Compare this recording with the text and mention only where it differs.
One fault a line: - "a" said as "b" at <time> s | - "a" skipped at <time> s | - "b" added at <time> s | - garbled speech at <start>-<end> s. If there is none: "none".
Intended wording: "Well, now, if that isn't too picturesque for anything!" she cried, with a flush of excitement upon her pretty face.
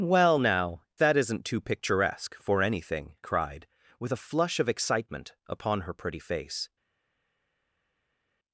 - "if" skipped at 0.8 s
- "she" skipped at 3.2 s